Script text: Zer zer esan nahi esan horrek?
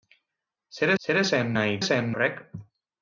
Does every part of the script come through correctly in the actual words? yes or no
yes